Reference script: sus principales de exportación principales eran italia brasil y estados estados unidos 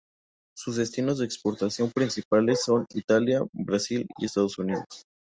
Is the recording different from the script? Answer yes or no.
yes